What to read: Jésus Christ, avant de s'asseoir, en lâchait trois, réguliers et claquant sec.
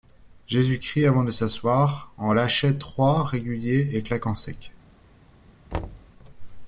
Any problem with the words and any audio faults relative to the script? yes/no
yes